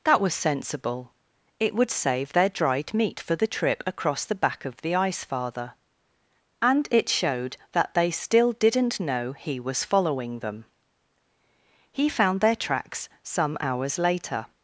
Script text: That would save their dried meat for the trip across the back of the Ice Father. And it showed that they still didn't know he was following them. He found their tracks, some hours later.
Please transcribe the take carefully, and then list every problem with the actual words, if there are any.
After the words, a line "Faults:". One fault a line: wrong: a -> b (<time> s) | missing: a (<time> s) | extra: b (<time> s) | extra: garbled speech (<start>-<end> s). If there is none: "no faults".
That was sensible; it would save their dried meat for the trip across the back of the Ice Father. And it showed that they still didn't know he was following them. He found their tracks, some hours later.
Faults:
extra: was sensible it (0.2 s)